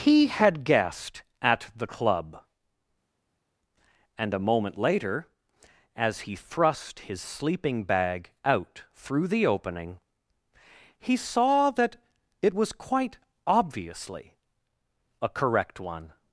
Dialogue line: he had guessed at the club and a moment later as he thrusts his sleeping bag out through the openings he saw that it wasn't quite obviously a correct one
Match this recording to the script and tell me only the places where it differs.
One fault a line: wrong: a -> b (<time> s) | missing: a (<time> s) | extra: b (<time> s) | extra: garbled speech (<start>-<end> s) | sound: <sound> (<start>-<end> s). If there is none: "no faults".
wrong: thrusts -> thrust (6.4 s)
wrong: openings -> opening (9.5 s)
wrong: wasn't -> was (12.5 s)